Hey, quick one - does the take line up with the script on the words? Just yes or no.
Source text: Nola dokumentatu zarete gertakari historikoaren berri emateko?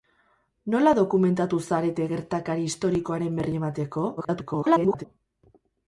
no